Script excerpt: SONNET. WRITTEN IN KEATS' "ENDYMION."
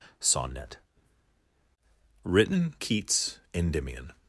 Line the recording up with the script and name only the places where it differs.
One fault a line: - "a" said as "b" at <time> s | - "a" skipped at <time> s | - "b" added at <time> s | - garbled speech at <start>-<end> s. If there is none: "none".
- "IN" skipped at 2.8 s